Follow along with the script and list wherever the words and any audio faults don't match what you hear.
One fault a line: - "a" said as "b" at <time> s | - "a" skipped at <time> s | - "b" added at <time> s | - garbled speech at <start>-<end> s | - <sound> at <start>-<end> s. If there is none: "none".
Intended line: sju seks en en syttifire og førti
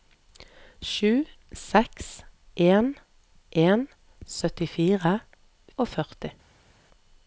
none